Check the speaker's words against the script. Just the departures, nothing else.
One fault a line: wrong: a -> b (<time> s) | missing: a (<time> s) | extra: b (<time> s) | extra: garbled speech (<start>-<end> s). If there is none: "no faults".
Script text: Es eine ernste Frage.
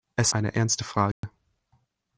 no faults